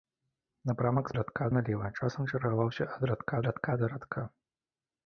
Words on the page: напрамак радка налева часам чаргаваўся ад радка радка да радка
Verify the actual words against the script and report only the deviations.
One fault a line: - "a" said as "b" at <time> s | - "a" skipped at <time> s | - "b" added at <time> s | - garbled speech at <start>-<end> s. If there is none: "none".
none